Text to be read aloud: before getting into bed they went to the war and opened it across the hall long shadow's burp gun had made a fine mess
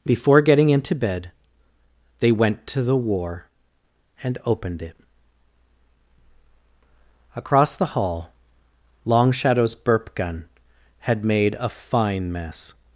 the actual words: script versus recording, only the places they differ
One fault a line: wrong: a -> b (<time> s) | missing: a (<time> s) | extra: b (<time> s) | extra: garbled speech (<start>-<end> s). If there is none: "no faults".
no faults